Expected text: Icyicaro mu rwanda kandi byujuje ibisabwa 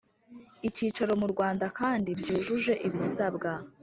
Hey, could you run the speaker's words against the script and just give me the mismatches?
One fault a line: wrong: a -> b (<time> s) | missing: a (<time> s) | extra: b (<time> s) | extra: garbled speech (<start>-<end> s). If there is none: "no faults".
no faults